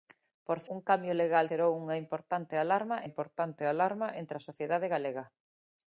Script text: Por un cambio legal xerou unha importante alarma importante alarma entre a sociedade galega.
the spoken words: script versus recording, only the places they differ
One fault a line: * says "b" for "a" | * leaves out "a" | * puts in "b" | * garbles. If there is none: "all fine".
all fine